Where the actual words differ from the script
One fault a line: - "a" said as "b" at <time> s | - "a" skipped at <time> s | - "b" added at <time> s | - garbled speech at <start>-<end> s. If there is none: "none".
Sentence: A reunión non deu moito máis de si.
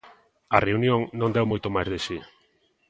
none